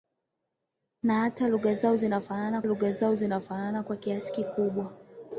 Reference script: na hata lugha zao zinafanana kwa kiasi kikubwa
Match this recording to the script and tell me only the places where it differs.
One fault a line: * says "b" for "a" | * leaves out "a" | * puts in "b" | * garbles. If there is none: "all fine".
* puts in "lugha zao zinafanana"